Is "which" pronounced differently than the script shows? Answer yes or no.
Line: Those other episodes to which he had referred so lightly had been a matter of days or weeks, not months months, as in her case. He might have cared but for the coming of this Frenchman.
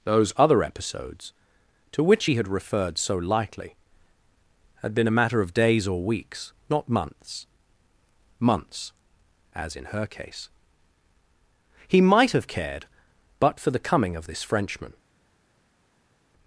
no